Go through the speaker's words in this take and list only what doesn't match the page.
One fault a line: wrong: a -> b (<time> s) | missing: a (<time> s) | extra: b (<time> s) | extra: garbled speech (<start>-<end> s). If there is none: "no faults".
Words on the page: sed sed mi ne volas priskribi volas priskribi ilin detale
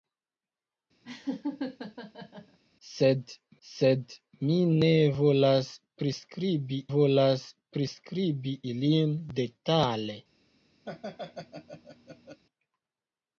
no faults